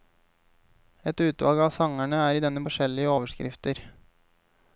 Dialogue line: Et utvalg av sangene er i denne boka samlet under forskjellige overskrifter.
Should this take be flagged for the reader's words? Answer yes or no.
yes